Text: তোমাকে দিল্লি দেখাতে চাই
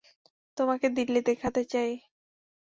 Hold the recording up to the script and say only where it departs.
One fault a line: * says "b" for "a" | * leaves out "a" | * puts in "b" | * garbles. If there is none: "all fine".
all fine